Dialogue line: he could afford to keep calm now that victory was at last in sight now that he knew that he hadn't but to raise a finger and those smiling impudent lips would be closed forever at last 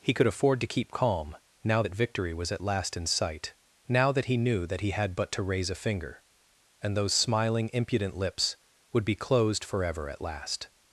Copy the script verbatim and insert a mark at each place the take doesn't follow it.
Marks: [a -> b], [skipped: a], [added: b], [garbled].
he could afford to keep calm now that victory was at last in sight now that he knew that he [hadn't -> had] but to raise a finger and those smiling impudent lips would be closed forever at last